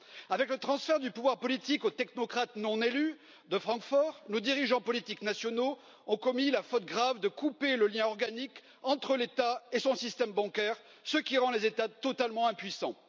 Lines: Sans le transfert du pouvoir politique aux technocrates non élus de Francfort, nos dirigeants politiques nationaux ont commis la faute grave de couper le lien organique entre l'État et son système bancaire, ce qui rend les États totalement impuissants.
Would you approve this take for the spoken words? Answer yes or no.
no